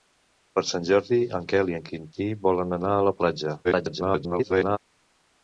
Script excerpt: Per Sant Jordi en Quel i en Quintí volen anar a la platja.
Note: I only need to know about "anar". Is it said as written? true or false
true